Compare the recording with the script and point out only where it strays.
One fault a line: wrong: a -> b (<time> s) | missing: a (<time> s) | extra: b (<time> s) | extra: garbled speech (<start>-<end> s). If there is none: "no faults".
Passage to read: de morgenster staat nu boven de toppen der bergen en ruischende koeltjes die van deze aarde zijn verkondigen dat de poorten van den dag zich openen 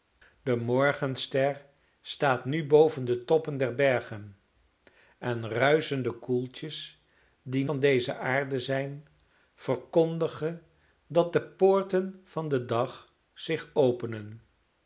no faults